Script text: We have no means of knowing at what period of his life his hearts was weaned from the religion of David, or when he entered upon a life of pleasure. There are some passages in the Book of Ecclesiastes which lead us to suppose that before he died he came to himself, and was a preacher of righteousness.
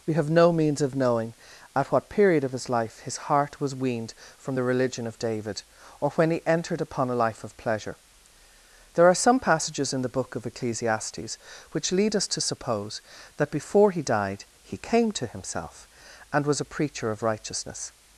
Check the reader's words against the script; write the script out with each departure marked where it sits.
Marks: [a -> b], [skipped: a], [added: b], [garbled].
We have no means of knowing at what period of his life his [hearts -> heart] was weaned from the religion of David, or when he entered upon a life of pleasure. There are some passages in the Book of Ecclesiastes which lead us to suppose that before he died he came to himself, and was a preacher of righteousness.